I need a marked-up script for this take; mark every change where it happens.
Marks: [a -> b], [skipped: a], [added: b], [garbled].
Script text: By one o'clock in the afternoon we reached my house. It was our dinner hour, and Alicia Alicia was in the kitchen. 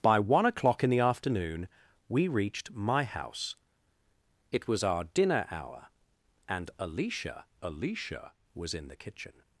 By one o'clock in the afternoon we reached my house. It was our dinner hour, and Alicia Alicia was in the kitchen.